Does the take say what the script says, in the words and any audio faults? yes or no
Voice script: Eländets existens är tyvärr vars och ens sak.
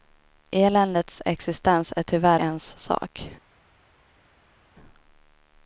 no